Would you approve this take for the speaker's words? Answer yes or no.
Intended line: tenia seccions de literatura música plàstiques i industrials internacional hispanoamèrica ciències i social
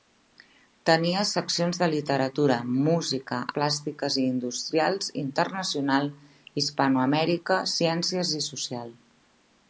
yes